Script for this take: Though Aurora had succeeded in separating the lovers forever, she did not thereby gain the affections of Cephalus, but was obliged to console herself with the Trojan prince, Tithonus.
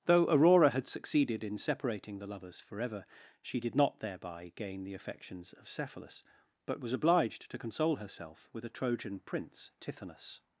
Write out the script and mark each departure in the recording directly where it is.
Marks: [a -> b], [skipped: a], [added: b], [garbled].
Though Aurora had succeeded in separating the lovers forever, she did not thereby gain the affections of Cephalus, but was obliged to console herself with [the -> a] Trojan prince, Tithonus.